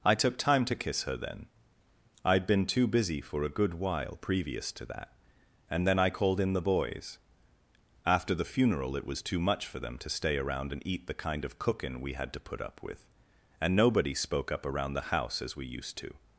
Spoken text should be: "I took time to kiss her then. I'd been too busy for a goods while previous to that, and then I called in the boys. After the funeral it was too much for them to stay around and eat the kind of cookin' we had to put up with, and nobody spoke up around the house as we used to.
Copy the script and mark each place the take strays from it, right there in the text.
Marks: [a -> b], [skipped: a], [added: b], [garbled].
"I took time to kiss her then. I'd been too busy for a [goods -> good] while previous to that, and then I called in the boys. After the funeral it was too much for them to stay around and eat the kind of cookin' we had to put up with, and nobody spoke up around the house as we used to.